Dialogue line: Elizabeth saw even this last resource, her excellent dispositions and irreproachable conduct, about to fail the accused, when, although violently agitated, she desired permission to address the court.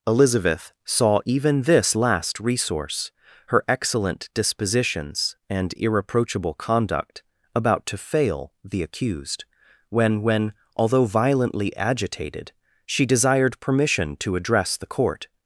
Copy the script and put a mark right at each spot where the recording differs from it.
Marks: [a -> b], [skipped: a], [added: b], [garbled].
Elizabeth saw even this last resource, her excellent dispositions and irreproachable conduct, about to fail the accused, when, [added: when] although violently agitated, she desired permission to address the court.